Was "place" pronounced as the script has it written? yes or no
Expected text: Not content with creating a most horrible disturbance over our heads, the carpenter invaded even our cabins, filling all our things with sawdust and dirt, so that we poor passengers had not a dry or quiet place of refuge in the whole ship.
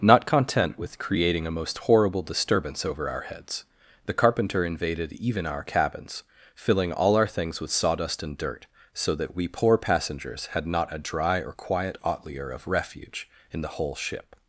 no